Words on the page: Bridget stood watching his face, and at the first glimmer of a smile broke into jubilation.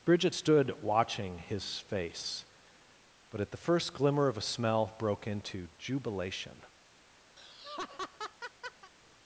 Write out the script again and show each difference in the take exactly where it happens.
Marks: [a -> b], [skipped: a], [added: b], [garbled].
Bridget stood watching his face, [and -> but] at the first glimmer of a [smile -> smell] broke into jubilation.